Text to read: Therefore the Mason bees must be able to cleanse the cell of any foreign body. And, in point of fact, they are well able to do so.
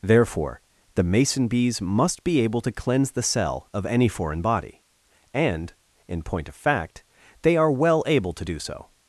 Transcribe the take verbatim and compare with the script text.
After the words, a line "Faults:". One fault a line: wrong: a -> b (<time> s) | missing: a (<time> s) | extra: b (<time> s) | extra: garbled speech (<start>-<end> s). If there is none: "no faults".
Therefore the Mason bees must be able to cleanse the cell of any foreign body. And, in point of fact, they are well able to do so.
Faults:
no faults